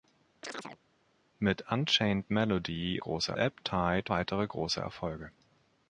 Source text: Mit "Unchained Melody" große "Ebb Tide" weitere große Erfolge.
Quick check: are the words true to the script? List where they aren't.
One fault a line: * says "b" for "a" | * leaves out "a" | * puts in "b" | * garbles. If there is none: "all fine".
all fine